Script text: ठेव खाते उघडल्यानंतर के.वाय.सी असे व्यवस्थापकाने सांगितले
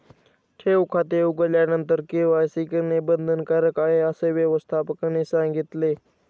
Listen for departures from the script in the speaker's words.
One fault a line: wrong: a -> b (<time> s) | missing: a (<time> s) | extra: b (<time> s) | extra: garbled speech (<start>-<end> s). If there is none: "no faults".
extra: करणे बंधनकारक आहे (2.7 s)